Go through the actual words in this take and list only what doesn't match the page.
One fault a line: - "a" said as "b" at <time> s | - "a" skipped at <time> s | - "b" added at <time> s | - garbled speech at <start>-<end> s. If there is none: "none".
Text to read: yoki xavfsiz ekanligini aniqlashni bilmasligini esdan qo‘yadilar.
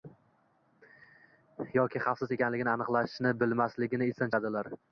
none